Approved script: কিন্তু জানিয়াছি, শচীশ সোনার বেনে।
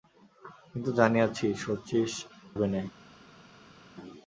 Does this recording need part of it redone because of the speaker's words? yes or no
yes